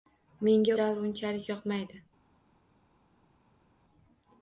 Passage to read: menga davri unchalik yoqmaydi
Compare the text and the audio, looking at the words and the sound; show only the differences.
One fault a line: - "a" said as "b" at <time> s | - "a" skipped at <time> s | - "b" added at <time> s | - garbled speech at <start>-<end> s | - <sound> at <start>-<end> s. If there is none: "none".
none